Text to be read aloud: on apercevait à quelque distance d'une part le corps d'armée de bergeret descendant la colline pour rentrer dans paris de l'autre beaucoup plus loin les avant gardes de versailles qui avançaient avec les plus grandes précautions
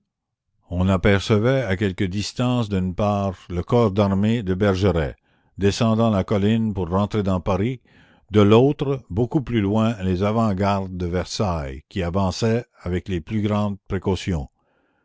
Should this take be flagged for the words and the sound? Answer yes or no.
no